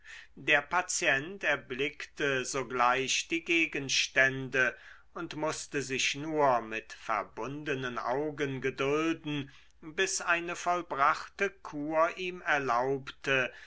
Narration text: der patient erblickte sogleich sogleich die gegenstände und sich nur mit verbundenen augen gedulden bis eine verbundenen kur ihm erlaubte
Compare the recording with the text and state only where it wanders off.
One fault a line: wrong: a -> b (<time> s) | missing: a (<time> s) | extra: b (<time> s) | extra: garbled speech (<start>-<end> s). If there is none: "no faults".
missing: sogleich (3.3 s)
extra: mußte (5.3 s)
wrong: verbundenen -> vollbrachte (10.6 s)